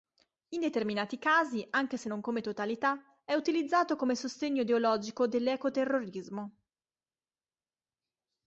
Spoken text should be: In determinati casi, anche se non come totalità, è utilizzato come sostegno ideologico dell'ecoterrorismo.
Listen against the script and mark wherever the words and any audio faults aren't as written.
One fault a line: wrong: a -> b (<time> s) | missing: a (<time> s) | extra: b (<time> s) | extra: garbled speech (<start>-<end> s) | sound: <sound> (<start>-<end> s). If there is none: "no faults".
no faults